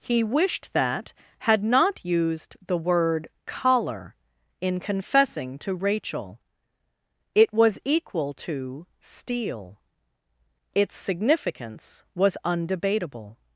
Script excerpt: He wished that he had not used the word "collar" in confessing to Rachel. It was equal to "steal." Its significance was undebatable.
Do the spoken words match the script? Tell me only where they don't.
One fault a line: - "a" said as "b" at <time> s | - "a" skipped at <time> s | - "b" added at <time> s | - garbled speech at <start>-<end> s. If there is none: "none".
- "he" skipped at 1.1 s